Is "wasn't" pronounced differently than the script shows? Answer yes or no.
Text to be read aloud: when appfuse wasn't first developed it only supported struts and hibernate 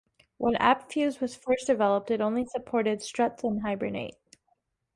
yes